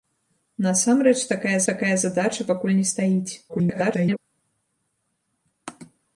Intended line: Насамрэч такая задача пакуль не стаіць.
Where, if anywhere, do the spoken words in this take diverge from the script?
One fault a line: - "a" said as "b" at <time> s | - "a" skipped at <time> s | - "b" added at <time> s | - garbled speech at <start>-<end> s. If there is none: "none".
- "такая" added at 1.7 s
- garbled speech at 3.5-4.2 s